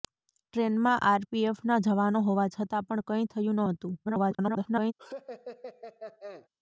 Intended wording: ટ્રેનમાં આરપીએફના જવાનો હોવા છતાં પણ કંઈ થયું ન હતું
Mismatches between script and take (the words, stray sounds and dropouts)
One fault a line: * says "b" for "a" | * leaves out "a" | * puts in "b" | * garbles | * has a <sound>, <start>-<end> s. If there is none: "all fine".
* garbles
* has a laugh, 5.0-6.5 s